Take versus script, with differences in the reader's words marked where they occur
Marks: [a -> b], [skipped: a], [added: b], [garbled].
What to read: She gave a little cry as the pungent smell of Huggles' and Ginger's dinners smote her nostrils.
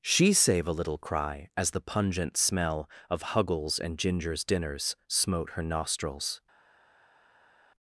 She [gave -> save] a little cry as the pungent smell of Huggles' and Ginger's dinners smote her nostrils.